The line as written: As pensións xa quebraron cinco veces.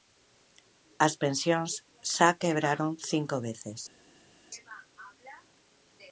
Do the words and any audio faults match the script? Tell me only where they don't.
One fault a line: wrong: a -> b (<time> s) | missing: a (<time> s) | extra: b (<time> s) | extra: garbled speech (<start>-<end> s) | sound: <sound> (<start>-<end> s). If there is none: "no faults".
no faults